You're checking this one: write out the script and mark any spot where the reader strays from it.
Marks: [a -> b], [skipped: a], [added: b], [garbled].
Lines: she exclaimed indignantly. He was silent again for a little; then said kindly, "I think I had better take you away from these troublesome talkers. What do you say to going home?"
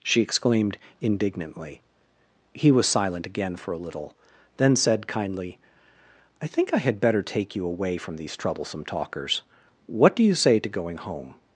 she exclaimed indignantly. He was silent again for a little; then said kindly, "I think I had better take you away from these troublesome talkers. What do you say to going home?"